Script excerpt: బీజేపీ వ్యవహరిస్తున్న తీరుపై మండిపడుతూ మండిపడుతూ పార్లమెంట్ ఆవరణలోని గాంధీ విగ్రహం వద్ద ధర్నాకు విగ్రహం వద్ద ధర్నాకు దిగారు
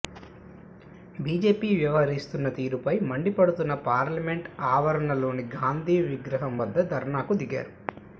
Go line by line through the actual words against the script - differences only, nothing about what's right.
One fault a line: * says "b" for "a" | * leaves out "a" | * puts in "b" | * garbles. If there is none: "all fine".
* leaves out "మండిపడుతూ"
* leaves out "విగ్రహం వద్ద ధర్నాకు"